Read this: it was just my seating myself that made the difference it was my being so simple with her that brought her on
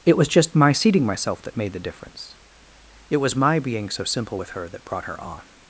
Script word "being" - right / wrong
right